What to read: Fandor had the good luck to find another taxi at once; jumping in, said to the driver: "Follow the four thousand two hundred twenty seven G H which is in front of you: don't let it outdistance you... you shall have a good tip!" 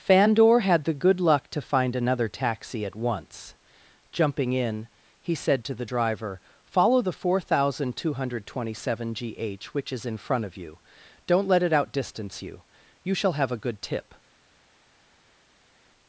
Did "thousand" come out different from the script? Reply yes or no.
no